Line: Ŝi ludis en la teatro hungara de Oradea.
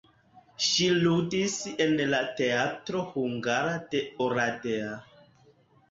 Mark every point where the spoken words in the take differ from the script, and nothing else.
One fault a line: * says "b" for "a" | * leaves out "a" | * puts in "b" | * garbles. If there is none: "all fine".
all fine